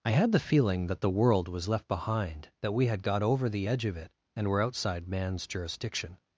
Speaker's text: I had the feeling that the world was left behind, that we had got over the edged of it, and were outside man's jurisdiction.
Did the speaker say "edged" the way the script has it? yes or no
no